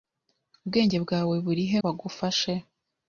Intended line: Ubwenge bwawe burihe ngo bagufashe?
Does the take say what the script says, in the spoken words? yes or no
no